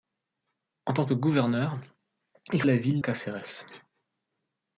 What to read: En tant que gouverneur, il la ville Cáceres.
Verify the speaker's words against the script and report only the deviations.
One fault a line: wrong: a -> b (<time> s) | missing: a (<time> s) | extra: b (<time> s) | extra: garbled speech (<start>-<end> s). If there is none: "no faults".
no faults